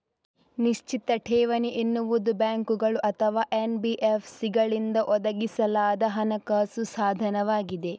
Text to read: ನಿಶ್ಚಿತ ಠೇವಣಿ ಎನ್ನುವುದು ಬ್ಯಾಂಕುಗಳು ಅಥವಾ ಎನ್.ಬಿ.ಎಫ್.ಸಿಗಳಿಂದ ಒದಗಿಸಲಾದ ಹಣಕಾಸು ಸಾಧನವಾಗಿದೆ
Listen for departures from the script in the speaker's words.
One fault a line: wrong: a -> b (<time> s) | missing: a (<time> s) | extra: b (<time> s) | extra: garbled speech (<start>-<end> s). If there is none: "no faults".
no faults